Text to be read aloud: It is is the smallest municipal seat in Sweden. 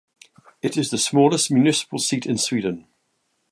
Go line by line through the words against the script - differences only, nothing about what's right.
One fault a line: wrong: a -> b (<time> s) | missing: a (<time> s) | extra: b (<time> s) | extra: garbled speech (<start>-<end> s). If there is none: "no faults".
missing: is (0.9 s)